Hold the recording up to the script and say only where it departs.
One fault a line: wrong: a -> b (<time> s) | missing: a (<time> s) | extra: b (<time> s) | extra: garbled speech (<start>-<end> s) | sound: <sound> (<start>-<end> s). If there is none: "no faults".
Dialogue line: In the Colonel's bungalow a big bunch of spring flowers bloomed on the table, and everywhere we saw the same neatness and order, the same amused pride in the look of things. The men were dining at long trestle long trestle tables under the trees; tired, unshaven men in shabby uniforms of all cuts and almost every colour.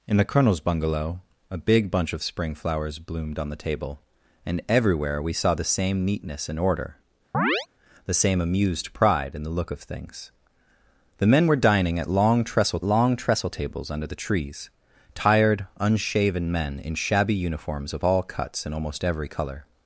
sound: chirp (7.3-7.7 s)